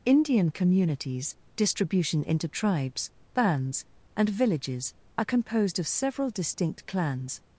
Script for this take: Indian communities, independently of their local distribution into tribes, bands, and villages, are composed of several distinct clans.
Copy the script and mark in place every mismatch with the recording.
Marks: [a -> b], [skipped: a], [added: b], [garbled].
Indian communities, [skipped: independently of their local] distribution into tribes, bands, and villages, are composed of several distinct clans.